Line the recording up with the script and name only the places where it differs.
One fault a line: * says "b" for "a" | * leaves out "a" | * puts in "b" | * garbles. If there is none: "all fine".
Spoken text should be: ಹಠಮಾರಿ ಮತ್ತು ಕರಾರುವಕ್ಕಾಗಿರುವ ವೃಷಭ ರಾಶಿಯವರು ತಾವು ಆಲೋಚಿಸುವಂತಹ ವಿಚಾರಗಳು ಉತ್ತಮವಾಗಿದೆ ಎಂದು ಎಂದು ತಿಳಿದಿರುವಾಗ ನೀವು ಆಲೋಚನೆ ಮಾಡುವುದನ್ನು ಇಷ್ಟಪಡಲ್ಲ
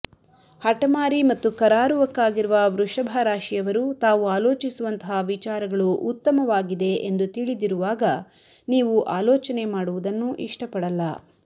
* leaves out "ಎಂದು"